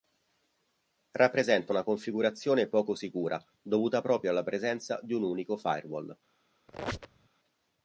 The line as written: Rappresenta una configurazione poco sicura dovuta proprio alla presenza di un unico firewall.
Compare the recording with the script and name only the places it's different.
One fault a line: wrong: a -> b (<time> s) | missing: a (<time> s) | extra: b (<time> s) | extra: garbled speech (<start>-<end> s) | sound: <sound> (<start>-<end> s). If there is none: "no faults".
sound: squeak (6.7-7.3 s)